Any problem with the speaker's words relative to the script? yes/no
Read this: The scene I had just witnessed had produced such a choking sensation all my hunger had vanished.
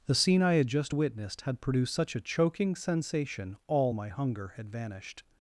no